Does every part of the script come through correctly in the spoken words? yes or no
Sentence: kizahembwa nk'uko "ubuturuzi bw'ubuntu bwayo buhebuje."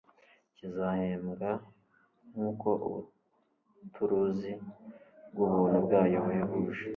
yes